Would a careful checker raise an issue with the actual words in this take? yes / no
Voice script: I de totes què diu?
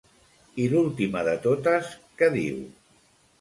yes